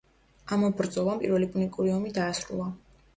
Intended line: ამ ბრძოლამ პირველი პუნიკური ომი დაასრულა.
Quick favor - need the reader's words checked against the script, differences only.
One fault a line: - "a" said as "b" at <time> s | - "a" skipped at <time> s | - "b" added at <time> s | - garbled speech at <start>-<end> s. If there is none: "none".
none